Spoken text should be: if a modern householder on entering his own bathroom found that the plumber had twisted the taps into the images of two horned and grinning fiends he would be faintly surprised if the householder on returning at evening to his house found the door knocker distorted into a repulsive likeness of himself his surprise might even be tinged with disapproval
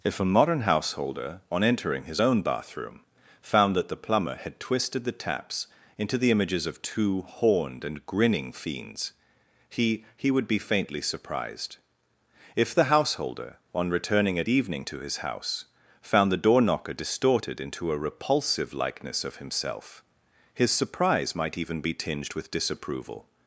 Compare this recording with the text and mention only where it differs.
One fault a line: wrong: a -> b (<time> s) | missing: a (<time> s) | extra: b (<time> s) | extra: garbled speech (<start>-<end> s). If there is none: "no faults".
extra: he (10.2 s)